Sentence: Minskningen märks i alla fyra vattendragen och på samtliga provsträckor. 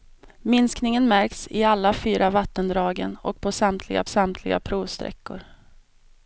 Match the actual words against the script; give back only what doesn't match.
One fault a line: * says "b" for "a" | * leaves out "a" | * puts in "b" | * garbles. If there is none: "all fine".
* puts in "samtliga"